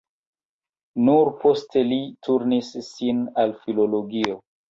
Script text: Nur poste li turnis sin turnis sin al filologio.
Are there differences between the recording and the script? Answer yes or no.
yes